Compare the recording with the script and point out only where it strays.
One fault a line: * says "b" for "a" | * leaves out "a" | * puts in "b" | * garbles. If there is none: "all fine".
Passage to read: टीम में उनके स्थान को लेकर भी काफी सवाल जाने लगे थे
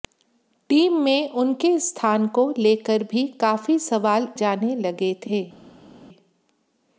all fine